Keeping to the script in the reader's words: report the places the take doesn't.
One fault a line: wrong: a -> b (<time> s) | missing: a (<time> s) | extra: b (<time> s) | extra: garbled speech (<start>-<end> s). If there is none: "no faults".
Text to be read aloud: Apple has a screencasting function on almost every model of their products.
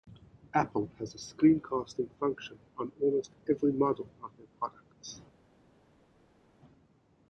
no faults